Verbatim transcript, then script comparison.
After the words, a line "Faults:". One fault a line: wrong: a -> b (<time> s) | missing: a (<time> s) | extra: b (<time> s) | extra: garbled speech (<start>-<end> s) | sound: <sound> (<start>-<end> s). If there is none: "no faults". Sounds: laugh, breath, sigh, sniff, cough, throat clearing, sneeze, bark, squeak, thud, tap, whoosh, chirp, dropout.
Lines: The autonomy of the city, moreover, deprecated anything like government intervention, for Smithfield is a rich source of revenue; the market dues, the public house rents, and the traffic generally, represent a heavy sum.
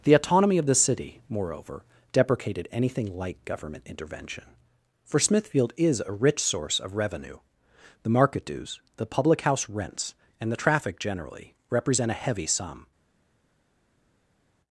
The autonomy of the city, moreover, deprecated anything like government intervention, for Smithfield is a rich source of revenue; the market dues, the public house rents, and the traffic generally, represent a heavy sum.
Faults:
no faults